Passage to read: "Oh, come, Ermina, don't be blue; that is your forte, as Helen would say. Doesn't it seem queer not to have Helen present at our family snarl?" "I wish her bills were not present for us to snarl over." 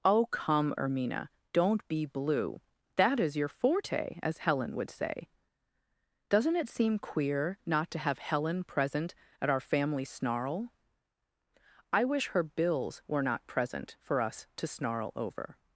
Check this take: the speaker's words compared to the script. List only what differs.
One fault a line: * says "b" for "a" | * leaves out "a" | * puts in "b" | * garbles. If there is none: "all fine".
all fine